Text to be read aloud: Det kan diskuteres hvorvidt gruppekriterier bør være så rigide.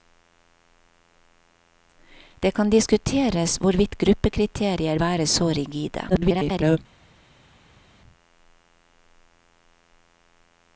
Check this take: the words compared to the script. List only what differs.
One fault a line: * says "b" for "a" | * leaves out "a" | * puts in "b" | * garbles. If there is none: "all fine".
* leaves out "bør"
* garbles